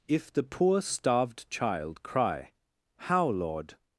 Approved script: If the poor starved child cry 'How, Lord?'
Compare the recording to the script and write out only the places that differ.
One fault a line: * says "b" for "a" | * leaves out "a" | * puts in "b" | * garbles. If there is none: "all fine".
all fine